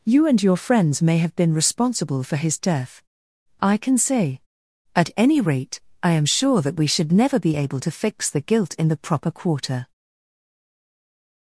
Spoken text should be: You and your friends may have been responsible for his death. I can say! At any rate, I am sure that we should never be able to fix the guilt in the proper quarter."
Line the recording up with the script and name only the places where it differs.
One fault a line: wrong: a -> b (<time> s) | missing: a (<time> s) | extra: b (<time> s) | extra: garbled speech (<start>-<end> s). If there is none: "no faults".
no faults